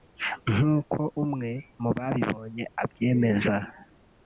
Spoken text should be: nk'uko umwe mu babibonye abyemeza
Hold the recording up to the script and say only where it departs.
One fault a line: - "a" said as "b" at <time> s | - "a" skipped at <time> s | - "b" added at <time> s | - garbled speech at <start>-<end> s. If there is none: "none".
none